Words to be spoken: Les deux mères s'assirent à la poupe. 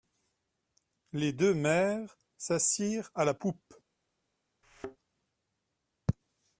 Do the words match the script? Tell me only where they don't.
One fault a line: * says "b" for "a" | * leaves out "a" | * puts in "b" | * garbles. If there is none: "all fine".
all fine